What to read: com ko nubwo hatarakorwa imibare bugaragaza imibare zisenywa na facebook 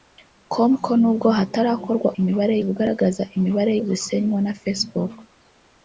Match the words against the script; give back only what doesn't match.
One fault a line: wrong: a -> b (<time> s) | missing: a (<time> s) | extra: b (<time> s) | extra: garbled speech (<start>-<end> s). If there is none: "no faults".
no faults